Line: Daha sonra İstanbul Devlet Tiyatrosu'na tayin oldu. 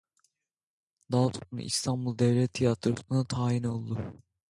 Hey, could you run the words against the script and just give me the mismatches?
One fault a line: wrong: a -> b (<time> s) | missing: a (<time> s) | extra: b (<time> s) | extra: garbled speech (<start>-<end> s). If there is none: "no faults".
no faults